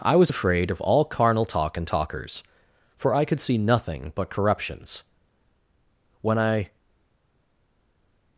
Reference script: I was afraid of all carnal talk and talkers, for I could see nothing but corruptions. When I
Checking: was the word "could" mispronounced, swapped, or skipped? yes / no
no